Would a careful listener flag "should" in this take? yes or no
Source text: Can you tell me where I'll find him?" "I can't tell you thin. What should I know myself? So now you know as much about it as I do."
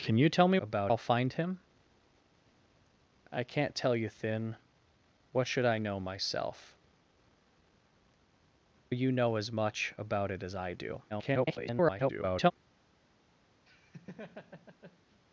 no